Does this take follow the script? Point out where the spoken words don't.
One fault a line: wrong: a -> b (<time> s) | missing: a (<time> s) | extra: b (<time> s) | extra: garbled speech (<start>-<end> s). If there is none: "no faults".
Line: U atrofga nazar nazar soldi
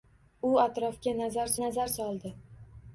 no faults